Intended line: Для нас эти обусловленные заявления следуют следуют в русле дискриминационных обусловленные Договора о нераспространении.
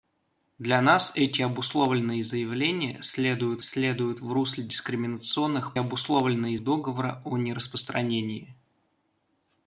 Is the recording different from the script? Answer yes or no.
no